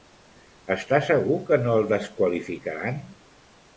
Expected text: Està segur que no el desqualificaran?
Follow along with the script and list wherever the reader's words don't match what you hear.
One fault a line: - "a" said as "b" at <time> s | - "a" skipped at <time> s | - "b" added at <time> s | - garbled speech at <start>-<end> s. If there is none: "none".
none